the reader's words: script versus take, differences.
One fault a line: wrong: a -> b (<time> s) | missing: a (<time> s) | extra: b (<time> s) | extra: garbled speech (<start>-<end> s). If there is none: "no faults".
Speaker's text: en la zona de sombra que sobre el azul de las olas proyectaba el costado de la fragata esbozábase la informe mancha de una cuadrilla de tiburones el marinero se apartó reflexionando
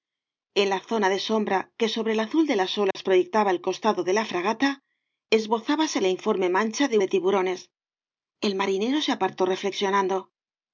missing: una cuadrilla (7.0 s)